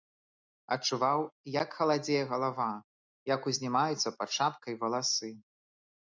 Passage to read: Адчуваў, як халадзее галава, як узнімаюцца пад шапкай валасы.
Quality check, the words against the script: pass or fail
pass